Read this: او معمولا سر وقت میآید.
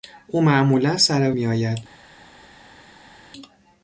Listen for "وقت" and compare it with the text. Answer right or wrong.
wrong